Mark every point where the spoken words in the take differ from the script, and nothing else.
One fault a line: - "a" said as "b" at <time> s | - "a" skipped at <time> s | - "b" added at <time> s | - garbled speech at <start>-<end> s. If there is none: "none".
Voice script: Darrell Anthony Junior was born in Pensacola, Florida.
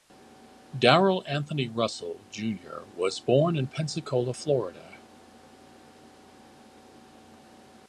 - "Russell" added at 1.7 s